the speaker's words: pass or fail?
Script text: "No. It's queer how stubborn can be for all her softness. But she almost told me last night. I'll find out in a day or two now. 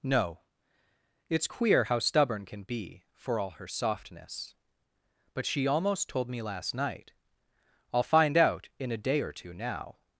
pass